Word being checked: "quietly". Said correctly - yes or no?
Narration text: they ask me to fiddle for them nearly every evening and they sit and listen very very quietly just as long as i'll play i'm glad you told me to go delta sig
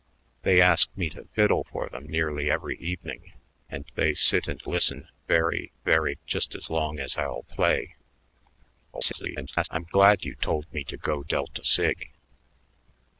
no